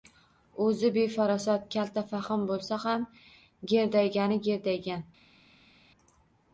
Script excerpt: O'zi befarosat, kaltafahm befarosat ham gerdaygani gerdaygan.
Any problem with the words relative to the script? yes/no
yes